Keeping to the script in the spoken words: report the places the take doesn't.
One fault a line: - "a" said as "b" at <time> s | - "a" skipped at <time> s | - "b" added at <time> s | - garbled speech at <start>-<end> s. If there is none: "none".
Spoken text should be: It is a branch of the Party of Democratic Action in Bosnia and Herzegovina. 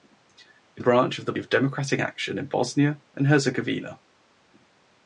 - "is" skipped at 0.8 s
- "Party" skipped at 1.3 s